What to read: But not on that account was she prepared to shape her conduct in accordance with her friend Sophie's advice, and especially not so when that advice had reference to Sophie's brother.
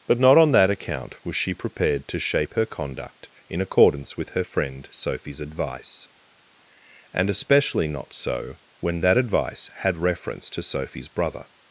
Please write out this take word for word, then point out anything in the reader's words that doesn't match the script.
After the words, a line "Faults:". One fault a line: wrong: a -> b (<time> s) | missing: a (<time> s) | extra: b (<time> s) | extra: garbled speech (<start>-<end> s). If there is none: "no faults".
But not on that account was she prepared to shape her conduct in accordance with her friend Sophie's advice, and especially not so when that advice had reference to Sophie's brother.
Faults:
no faults